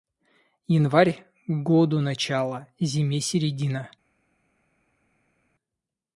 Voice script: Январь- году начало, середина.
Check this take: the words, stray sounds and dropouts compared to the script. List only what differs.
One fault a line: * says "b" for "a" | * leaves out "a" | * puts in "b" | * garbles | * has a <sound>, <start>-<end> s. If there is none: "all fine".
* puts in "зиме"